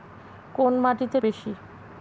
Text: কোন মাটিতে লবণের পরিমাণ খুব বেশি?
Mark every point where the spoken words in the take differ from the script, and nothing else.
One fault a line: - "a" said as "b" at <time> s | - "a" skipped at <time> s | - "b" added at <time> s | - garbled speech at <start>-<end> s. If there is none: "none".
- "লবণের পরিমাণ খুব" skipped at 1.2 s